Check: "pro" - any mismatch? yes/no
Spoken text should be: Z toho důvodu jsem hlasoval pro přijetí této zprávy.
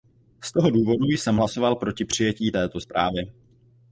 yes